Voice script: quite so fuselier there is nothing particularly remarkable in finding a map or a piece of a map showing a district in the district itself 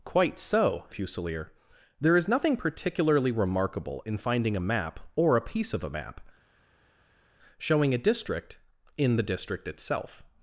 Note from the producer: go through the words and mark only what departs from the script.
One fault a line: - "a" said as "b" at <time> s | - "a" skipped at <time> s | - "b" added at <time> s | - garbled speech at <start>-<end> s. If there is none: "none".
none